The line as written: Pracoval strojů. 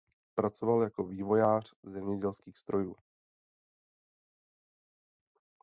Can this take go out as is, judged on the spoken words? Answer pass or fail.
fail